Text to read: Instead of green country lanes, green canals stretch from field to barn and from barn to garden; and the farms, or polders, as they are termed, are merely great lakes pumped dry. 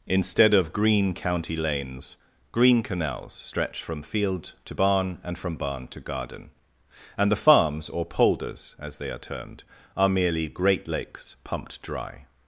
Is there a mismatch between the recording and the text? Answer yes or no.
yes